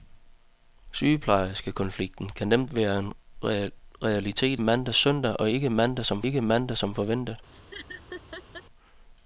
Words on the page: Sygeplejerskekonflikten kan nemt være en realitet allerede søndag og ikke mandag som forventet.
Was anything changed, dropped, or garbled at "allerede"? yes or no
yes